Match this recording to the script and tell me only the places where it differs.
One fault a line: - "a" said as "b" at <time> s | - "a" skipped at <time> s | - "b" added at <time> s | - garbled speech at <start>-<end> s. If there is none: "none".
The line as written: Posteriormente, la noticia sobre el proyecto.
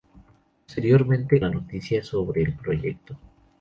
none